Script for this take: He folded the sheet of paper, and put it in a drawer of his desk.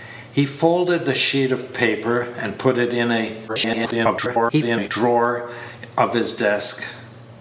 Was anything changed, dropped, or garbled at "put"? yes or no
no